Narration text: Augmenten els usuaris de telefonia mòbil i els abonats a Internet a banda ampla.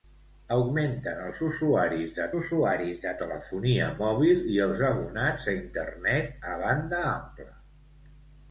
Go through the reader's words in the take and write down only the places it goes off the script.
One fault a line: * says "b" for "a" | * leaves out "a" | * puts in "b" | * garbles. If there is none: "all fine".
* puts in "usuaris de"